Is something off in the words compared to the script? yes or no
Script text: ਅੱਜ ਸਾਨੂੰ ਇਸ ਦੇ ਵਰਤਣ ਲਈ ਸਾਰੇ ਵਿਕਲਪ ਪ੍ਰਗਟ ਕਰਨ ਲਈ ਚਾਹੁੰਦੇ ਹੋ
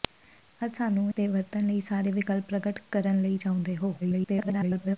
yes